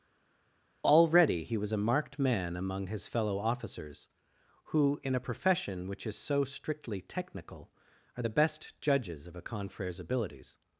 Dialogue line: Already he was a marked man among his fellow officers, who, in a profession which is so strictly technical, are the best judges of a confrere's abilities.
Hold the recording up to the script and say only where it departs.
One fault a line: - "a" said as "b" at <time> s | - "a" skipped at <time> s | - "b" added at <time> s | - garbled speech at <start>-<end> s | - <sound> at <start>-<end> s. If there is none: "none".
none